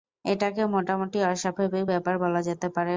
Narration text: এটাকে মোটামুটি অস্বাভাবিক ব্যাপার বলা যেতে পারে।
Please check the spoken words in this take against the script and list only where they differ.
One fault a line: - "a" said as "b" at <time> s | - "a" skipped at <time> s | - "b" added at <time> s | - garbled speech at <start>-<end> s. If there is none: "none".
none